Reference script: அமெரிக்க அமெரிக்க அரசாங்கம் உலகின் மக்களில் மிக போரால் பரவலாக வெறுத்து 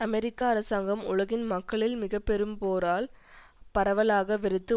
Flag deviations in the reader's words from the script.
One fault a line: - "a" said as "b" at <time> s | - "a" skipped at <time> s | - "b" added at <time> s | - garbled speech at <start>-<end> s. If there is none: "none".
- "அமெரிக்க" skipped at 0.4 s
- "பெரும்" added at 2.2 s